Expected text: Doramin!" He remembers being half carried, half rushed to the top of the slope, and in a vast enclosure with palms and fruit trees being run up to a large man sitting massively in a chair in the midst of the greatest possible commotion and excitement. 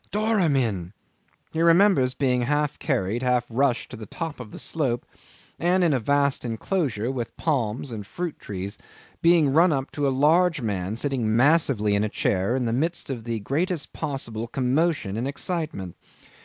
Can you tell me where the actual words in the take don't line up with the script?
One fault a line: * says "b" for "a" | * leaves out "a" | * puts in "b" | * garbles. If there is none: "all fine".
all fine